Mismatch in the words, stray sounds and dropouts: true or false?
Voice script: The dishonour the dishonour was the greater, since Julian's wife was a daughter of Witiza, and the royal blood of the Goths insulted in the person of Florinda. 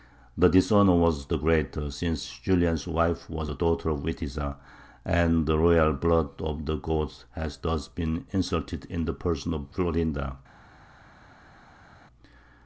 true